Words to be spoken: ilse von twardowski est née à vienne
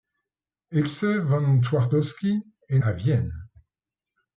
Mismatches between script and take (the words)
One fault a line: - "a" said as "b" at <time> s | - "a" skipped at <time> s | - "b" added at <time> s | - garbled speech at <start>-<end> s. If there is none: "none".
- "née" skipped at 2.8 s